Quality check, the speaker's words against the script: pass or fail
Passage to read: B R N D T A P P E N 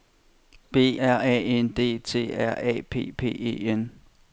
fail